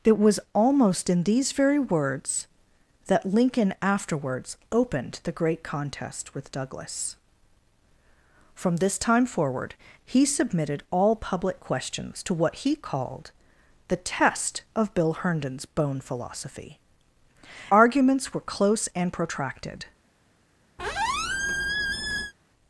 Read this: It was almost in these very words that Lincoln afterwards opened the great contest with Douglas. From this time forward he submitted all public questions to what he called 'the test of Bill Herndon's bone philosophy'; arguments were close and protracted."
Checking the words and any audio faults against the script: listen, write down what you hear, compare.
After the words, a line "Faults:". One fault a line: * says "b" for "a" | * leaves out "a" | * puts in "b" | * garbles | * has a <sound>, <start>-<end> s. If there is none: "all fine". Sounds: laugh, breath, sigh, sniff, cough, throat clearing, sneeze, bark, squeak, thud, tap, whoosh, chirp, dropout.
It was almost in these very words that Lincoln afterwards opened the great contest with Douglas. From this time forward he submitted all public questions to what he called 'the test of Bill Herndon's bone philosophy'; arguments were close and protracted."
Faults:
* has a squeak, 20.8-22.3 s